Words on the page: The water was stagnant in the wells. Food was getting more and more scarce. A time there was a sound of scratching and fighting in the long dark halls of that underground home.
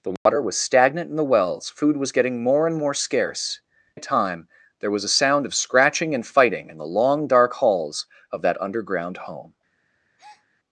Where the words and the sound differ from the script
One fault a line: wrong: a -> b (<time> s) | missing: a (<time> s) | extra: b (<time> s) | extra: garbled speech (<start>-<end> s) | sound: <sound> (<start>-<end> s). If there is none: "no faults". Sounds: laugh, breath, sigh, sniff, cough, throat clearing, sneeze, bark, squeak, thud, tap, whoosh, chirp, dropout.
sound: dropout (0.2-0.3 s)
sound: breath (10.2-10.5 s)